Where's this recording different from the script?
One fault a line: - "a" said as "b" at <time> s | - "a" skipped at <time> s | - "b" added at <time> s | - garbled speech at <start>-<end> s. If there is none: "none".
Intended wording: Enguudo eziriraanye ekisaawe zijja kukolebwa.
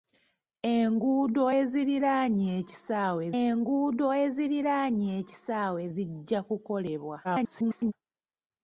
- "enguudo eziriraanye ekisaawe" added at 3.4 s
- garbled speech at 7.2-7.9 s